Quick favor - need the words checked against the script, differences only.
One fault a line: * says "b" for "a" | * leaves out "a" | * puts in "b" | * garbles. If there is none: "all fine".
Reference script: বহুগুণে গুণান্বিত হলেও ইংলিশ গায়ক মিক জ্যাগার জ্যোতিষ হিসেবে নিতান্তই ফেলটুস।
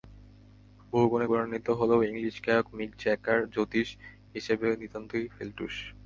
all fine